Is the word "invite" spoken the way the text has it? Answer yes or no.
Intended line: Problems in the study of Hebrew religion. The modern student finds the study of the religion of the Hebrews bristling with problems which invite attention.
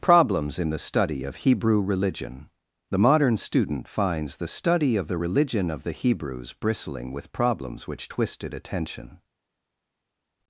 no